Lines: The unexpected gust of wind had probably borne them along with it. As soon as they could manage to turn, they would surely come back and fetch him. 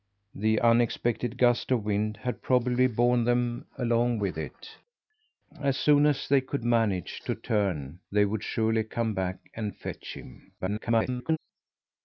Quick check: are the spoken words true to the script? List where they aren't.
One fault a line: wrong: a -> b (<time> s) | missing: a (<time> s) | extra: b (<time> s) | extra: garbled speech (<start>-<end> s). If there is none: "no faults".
extra: garbled speech (10.6-11.4 s)